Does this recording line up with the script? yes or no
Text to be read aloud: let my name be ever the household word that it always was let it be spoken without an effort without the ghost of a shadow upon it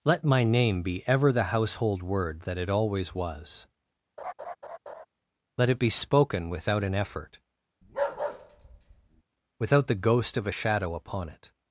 yes